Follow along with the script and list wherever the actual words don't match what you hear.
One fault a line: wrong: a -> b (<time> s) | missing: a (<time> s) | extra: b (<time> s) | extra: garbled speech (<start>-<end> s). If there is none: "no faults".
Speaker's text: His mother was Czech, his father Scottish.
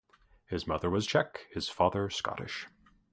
no faults